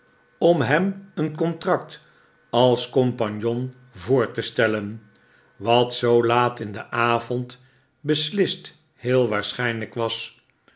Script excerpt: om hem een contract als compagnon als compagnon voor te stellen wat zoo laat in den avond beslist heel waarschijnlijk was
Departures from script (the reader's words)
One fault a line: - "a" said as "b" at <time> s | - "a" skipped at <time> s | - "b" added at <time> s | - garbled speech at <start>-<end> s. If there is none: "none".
- "als compagnon" skipped at 3.8 s